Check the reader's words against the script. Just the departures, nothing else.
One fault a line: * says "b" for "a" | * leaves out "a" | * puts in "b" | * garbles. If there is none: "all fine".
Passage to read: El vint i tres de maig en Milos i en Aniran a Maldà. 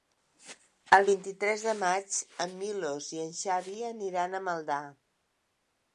* puts in "Xavi"